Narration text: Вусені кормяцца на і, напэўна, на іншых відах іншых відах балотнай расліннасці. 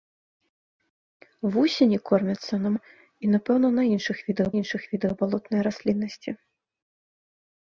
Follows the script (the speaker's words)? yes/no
yes